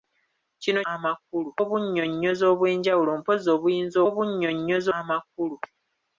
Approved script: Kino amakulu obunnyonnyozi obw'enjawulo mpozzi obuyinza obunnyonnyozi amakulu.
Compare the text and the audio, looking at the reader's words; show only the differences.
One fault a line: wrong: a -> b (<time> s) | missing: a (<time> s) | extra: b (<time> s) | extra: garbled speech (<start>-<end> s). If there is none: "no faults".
no faults